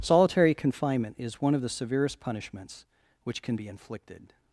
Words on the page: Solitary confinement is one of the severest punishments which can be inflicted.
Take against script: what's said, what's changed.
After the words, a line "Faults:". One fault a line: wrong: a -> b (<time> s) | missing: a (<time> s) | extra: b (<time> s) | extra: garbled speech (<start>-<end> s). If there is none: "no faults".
Solitary confinement is one of the severest punishments which can be inflicted.
Faults:
no faults